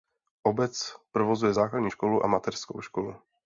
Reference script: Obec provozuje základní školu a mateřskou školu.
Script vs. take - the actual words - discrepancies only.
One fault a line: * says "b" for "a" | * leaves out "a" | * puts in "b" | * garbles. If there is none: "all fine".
all fine